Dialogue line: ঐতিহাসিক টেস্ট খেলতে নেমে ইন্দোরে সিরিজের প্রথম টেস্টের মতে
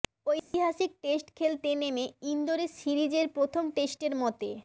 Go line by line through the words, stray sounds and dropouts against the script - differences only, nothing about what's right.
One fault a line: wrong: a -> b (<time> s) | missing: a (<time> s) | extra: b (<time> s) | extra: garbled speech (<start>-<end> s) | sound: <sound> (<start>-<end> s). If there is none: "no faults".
sound: dropout (0.4-0.5 s)